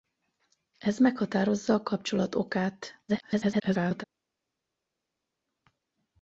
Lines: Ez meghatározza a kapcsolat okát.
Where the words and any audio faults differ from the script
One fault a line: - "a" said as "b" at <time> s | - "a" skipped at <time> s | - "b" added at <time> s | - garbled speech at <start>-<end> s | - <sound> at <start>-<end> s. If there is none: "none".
- garbled speech at 3.1-4.0 s